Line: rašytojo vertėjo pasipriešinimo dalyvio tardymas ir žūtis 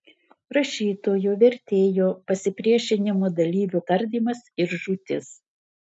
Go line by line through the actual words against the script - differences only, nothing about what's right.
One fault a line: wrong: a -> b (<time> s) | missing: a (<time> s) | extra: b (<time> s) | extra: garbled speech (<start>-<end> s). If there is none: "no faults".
no faults